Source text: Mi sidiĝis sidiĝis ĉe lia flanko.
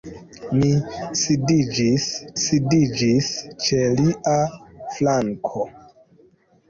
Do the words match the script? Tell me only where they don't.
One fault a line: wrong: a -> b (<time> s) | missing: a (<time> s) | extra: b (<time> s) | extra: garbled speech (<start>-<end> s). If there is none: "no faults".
no faults